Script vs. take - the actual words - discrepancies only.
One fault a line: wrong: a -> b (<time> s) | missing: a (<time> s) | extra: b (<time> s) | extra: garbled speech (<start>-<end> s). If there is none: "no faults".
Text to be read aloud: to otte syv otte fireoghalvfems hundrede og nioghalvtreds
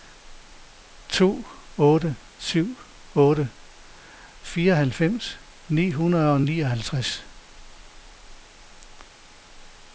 extra: ni (5.7 s)